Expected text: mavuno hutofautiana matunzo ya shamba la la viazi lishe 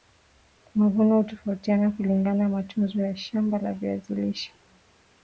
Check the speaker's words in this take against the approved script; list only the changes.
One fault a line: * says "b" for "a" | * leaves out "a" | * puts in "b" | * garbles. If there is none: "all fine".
* puts in "kulingana"
* leaves out "la"